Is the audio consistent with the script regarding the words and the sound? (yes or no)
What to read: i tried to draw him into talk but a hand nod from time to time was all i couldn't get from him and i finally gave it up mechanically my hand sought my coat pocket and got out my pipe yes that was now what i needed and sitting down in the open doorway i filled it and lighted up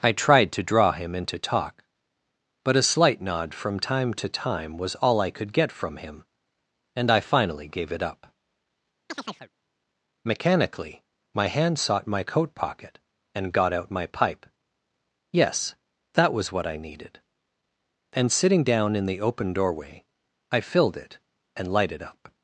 no